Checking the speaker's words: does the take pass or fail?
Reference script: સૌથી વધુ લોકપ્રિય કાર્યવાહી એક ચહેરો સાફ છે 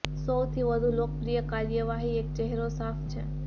pass